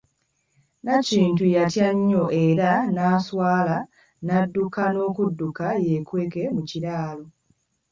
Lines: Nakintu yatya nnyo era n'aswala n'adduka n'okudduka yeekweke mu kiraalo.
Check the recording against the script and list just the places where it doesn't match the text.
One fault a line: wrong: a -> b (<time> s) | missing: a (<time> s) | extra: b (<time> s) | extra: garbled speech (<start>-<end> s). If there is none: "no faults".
no faults